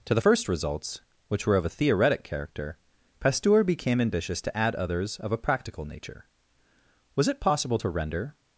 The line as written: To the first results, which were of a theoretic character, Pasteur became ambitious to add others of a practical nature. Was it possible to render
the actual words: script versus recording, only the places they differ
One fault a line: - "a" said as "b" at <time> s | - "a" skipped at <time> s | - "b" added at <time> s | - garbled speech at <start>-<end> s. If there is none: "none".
none